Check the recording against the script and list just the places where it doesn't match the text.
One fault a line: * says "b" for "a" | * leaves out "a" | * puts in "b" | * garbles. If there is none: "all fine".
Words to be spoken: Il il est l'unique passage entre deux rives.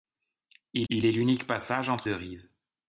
all fine